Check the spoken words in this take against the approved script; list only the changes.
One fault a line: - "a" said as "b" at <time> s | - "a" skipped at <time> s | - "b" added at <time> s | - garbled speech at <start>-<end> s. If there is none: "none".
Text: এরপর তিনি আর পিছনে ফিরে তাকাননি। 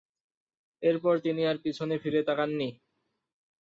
none